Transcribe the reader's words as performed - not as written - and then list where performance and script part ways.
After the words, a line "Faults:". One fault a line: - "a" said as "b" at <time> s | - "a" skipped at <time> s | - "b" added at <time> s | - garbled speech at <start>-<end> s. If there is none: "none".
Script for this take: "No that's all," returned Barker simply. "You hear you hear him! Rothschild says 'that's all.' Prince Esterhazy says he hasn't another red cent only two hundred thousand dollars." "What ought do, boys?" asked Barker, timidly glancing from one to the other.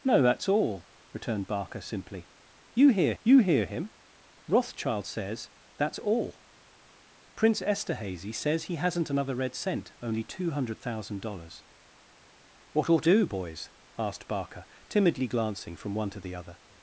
"No that's all," returned Barker simply. "You hear you hear him! Rothschild says 'that's all.' Prince Esterhazy says he hasn't another red cent only two hundred thousand dollars." "What ought do, boys?" asked Barker, timidly glancing from one to the other.
Faults:
none